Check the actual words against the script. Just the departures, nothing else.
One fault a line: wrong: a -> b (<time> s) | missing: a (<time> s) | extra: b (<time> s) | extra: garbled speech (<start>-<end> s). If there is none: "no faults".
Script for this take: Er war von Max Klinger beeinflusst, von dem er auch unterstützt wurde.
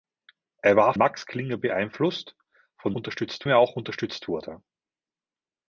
missing: von (0.9 s)
wrong: dem -> unterstützt (3.0 s)